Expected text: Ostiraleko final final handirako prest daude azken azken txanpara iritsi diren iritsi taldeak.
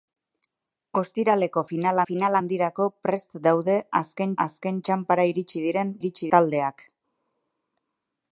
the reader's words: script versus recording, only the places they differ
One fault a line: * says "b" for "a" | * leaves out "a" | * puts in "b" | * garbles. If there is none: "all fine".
all fine